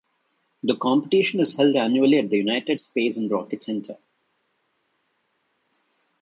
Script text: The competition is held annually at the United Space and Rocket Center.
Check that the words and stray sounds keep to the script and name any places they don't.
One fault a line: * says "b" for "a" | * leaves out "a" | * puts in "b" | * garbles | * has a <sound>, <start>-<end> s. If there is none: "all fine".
all fine